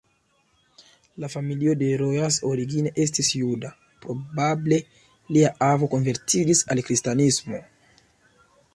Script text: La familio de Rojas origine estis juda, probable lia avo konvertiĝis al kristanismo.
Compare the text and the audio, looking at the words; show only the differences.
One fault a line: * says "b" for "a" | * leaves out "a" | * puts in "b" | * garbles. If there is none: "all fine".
all fine